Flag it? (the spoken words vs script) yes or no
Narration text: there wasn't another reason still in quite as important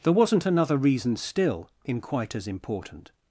no